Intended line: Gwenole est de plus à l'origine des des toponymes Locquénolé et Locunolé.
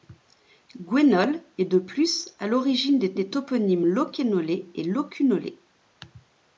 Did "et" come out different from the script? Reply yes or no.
no